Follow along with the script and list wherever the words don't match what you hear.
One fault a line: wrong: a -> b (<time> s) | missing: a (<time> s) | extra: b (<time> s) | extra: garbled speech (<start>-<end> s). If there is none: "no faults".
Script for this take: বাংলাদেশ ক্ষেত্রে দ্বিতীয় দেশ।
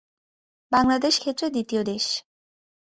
no faults